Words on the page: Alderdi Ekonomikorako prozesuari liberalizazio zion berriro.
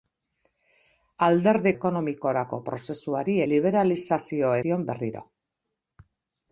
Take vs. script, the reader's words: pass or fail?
pass